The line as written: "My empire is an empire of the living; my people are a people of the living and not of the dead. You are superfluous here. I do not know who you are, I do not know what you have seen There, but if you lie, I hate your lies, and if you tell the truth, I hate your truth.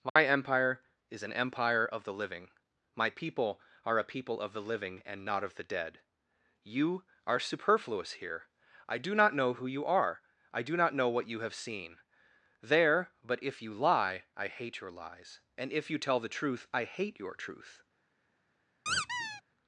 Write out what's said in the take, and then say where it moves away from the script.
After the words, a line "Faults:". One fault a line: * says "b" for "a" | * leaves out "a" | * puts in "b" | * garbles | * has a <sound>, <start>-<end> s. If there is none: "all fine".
"My empire is an empire of the living; my people are a people of the living and not of the dead. You are superfluous here. I do not know who you are, I do not know what you have seen There, but if you lie, I hate your lies, and if you tell the truth, I hate your truth.
Faults:
* has a dropout, 0.1-0.2 s
* has a squeak, 18.9-19.4 s